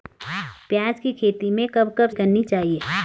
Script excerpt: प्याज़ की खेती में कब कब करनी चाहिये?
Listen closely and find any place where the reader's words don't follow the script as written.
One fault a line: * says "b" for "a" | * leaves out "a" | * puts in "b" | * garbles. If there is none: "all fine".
all fine